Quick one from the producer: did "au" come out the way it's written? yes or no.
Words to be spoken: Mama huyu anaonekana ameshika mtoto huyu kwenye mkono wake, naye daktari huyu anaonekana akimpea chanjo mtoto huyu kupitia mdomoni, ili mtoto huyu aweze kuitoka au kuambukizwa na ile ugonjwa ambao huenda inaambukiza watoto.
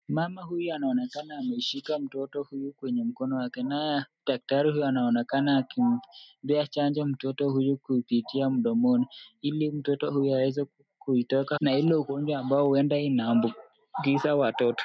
no